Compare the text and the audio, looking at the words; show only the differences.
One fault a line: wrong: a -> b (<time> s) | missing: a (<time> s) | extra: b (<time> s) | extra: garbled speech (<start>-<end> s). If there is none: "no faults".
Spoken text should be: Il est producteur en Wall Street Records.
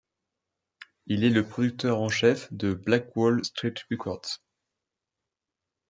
extra: le (1.3 s)
extra: chef de Black (2.1 s)